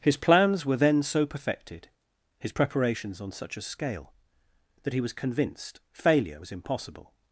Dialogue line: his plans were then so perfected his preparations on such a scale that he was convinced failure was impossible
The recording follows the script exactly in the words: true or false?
true